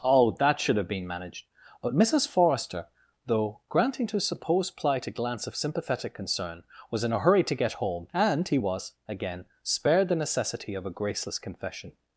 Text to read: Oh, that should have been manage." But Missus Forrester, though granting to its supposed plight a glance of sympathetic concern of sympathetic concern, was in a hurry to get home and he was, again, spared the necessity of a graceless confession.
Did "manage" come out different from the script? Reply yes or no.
yes